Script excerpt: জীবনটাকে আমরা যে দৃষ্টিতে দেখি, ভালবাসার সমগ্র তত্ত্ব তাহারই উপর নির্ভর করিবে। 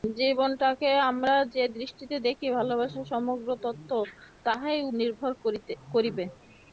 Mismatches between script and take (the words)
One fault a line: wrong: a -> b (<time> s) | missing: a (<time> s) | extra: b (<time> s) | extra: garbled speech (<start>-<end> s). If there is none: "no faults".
missing: উপর (4.8 s)